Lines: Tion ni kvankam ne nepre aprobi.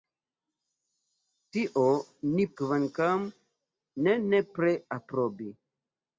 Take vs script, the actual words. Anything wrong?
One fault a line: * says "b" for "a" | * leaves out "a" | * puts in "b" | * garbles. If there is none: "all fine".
all fine